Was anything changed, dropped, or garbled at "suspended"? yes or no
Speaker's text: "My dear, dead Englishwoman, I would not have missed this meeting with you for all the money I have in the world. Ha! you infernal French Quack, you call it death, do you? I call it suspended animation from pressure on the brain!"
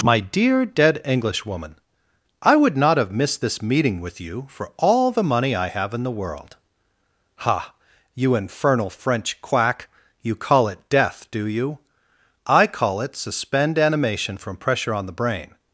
yes